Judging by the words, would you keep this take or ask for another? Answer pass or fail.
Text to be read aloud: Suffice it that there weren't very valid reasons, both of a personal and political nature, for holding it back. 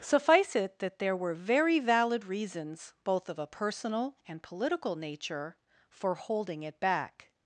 fail